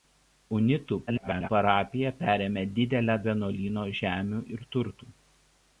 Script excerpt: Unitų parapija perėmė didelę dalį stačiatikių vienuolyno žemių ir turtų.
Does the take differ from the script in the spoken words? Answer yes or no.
yes